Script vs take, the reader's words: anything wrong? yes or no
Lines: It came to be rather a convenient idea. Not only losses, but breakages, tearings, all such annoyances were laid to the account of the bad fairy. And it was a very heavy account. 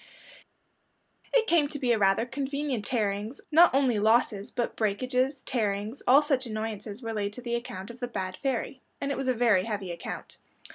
yes